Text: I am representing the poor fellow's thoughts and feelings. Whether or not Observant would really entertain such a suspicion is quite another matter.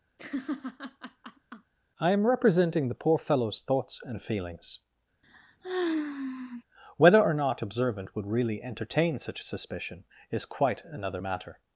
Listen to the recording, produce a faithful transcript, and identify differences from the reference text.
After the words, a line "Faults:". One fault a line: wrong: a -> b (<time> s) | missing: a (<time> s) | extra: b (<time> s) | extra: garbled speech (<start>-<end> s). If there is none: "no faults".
I am representing the poor fellow's thoughts and feelings. Whether or not Observant would really entertain such a suspicion is quite another matter.
Faults:
no faults